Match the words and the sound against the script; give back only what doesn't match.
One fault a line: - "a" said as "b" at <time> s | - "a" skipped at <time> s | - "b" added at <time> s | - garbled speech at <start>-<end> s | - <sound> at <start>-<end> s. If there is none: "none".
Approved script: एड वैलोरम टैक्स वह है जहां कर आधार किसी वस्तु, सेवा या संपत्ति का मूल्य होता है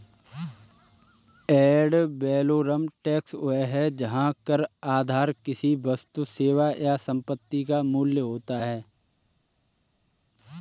none